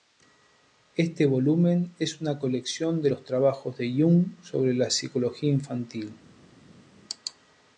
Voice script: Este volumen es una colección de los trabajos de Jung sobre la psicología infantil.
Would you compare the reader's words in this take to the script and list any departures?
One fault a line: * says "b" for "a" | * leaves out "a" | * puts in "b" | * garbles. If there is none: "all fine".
all fine